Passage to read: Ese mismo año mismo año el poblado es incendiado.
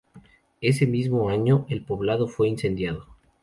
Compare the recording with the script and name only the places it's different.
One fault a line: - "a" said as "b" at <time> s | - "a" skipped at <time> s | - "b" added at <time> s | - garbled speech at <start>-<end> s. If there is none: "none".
- "mismo año" skipped at 1.6 s
- "es" said as "fue" at 2.3 s